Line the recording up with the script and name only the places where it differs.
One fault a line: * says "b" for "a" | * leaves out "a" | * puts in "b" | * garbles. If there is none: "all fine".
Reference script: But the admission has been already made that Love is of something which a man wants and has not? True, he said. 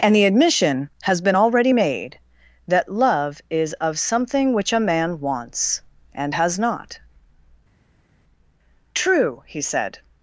* says "And" for "But"